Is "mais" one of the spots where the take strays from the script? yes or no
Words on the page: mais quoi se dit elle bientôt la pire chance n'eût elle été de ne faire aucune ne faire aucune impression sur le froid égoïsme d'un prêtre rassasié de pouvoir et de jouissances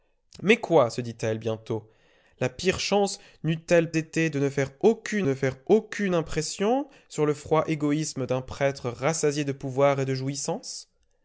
no